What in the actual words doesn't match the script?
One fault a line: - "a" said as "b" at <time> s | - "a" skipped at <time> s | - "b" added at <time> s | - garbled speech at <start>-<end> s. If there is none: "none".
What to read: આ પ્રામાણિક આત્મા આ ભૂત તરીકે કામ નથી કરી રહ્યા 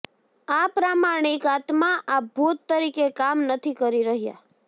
none